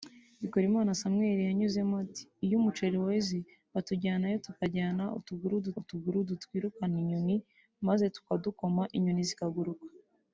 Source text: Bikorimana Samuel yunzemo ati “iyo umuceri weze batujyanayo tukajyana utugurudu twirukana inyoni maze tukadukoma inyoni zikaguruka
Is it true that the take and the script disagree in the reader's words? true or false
true